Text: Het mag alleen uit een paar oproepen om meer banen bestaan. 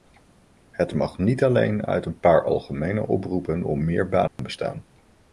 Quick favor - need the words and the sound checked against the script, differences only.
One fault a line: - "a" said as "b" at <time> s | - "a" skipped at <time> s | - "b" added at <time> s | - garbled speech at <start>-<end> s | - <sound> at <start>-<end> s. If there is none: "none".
- "niet" added at 1.2 s
- "algemene" added at 2.4 s
- dropout at 4.3-4.4 s